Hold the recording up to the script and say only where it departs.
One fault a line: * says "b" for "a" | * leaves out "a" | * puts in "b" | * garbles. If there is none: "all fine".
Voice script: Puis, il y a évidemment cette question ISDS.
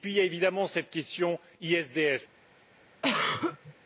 all fine